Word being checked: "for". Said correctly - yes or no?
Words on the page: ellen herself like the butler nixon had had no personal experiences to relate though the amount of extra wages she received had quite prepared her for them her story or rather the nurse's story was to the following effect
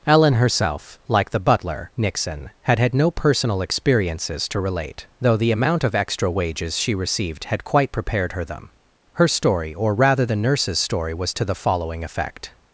no